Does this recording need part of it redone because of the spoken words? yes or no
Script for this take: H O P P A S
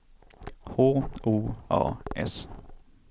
yes